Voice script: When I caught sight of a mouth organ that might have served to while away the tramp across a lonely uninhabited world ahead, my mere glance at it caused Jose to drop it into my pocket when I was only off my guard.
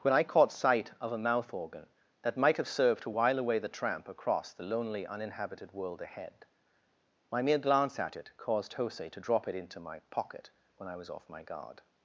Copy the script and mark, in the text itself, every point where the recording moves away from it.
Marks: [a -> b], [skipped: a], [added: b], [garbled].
When I caught sight of a mouth organ that might have served to while away the tramp across [a -> the] lonely uninhabited world ahead, my mere glance at it caused Jose to drop it into my pocket when I was [skipped: only] off my guard.